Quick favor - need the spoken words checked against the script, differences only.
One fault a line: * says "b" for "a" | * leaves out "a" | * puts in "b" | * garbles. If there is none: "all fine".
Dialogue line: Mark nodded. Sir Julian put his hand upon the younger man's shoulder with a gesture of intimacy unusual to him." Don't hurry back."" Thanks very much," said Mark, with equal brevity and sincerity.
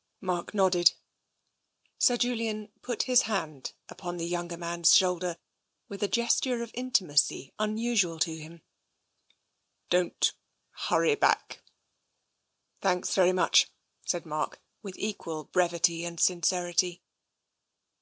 all fine